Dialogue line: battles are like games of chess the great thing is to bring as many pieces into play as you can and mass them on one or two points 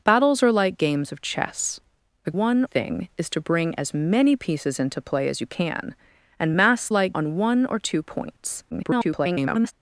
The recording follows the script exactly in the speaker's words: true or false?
false